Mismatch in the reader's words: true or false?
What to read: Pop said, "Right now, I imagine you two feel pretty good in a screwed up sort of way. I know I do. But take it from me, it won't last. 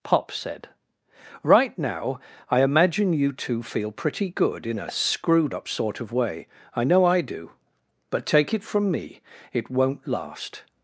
false